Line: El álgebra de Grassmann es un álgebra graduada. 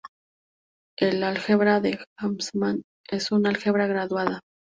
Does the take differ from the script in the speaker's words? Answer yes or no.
no